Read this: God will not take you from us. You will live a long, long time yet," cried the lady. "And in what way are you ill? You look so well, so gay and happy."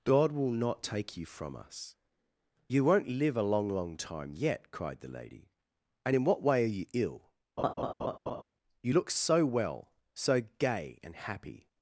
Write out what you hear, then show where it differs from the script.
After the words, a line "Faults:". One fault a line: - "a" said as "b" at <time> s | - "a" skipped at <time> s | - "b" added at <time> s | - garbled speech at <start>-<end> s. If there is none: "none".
God will not take you from us. You won't live a long, long time yet," cried the lady. "And in what way are you ill? You look so well, so gay and happy."
Faults:
- "will" said as "won't" at 2.8 s